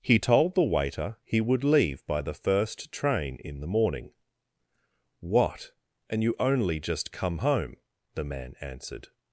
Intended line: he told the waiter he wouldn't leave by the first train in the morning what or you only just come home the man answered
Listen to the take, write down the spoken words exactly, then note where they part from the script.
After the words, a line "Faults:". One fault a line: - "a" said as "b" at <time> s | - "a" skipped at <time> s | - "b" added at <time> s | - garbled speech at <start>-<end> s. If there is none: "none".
he told the waiter he would leave by the first train in the morning what and you only just come home the man answered
Faults:
- "wouldn't" said as "would" at 1.4 s
- "or" said as "and" at 6.1 s